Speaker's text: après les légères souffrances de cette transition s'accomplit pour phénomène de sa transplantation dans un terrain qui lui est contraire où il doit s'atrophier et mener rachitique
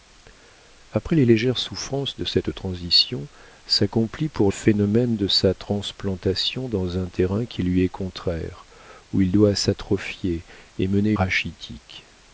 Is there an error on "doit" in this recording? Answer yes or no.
no